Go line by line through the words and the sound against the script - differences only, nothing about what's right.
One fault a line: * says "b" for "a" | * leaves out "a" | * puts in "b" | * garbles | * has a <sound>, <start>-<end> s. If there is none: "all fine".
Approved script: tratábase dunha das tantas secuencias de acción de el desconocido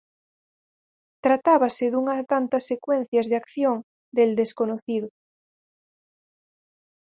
* leaves out "das"